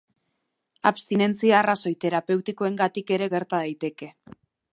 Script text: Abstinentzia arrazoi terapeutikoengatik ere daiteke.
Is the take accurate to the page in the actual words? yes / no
no